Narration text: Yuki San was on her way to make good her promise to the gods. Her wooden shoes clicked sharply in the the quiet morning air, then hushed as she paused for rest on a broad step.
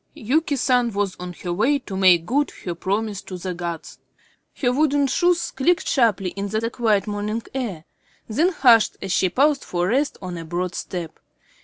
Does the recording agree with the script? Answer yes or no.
yes